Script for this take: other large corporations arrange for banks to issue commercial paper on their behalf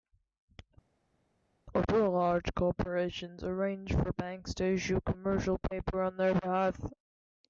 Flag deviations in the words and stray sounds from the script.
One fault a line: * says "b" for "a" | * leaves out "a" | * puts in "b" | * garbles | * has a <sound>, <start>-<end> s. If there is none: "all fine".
all fine